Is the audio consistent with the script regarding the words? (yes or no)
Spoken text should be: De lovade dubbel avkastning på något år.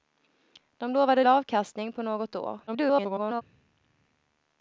no